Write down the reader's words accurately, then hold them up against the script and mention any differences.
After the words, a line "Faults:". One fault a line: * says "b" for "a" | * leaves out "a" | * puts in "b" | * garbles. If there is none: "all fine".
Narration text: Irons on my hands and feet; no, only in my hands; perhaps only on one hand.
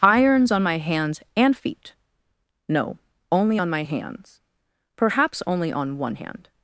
Irons on my hands and feet; no, only on my hands; perhaps only on one hand.
Faults:
* says "on" for "in"